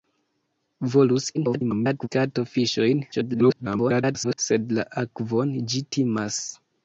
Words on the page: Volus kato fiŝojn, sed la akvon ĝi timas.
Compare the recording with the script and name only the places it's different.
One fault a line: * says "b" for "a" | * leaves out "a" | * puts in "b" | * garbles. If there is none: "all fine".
* garbles
* garbles